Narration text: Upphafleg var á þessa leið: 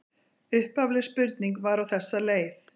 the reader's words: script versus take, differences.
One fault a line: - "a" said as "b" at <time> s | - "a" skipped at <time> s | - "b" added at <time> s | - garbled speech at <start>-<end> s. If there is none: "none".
- "spurning" added at 1.1 s